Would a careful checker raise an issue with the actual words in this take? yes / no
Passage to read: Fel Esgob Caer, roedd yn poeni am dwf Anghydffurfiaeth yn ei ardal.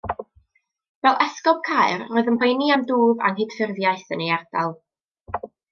no